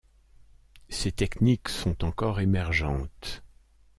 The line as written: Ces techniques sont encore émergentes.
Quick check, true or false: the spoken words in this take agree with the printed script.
true